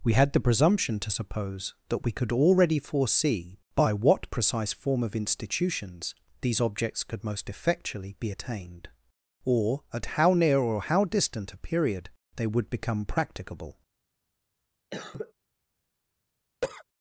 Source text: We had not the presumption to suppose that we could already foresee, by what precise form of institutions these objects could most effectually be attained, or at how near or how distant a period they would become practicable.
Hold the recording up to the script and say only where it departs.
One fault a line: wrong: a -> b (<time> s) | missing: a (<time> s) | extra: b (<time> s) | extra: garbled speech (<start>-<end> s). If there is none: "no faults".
missing: not (0.3 s)